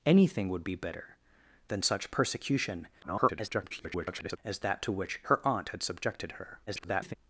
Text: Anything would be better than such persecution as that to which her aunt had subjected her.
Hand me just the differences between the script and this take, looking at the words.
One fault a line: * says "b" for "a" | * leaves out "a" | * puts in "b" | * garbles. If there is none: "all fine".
* garbles
* garbles